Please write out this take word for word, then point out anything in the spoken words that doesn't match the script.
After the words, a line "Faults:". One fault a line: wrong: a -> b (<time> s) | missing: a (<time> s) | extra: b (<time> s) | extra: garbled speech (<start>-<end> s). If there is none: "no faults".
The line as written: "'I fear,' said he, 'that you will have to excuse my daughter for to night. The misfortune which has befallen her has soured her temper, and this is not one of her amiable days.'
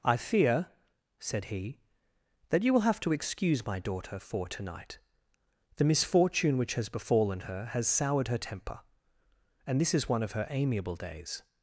"'I fear,' said he, 'that you will have to excuse my daughter for to night. The misfortune which has befallen her has soured her temper, and this is one of her amiable days.'
Faults:
missing: not (10.1 s)